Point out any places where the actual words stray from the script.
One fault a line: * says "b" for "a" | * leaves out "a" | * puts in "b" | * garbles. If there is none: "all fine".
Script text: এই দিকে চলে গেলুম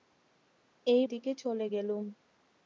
all fine